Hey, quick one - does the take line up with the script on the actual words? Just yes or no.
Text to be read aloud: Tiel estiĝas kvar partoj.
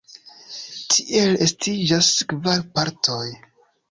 yes